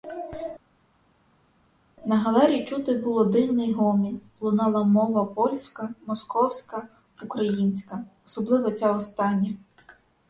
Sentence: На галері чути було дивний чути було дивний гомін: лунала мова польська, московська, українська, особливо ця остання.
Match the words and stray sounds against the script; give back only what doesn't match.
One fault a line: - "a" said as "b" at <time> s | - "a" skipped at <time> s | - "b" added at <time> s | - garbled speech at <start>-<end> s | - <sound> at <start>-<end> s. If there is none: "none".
- "чути було дивний" skipped at 3.7 s